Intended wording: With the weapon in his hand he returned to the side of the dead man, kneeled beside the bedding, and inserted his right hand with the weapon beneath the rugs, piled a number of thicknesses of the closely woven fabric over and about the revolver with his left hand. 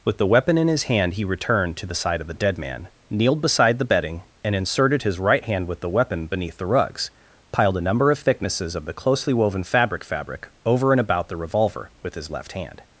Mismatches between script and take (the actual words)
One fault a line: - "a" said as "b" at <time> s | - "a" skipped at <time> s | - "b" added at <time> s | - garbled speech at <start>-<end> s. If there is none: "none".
- "fabric" added at 10.0 s